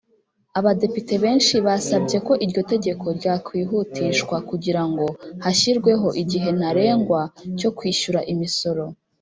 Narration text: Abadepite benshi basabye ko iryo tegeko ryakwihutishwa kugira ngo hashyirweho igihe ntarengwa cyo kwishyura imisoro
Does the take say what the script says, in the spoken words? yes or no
yes